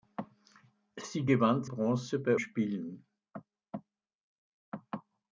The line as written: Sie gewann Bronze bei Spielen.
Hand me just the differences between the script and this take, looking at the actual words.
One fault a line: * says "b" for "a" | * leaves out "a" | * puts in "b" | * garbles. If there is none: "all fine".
all fine